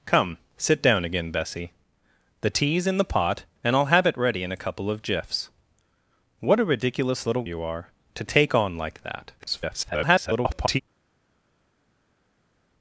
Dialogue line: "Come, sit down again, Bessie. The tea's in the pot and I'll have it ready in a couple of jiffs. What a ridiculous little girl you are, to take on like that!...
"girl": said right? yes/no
no